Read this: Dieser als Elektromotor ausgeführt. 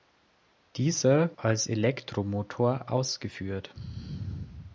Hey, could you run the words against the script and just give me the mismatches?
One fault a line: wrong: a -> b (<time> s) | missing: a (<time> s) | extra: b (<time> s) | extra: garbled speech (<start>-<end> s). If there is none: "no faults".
no faults